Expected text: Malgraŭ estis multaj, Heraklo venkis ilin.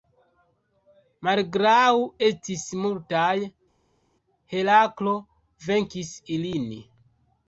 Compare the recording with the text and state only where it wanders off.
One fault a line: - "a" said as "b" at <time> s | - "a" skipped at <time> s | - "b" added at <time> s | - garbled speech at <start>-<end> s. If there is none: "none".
none